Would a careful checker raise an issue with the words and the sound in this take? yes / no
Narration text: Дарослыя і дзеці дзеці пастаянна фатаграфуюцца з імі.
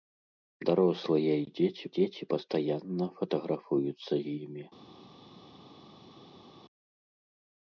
no